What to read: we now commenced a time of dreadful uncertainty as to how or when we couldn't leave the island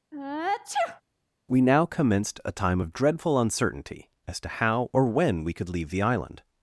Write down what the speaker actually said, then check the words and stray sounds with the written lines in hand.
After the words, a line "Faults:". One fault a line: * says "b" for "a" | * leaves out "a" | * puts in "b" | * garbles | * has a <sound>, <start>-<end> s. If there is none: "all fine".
we now commenced a time of dreadful uncertainty as to how or when we could leave the island
Faults:
* has a sneeze, 0.1-1.0 s
* says "could" for "couldn't"